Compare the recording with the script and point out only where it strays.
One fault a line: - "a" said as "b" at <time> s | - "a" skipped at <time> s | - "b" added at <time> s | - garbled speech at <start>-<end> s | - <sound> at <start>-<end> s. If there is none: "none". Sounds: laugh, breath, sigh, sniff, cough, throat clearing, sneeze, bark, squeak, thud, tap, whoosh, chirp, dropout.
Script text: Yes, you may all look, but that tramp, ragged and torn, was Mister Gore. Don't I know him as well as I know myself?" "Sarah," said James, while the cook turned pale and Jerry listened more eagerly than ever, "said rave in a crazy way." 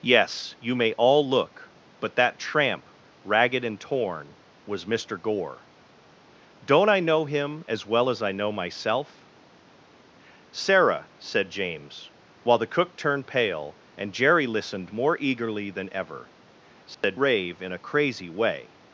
- dropout at 16.9-17.0 s